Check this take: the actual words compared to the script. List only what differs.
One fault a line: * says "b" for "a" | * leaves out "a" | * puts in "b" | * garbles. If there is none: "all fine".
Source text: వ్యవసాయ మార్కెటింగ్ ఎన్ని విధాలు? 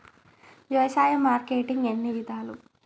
all fine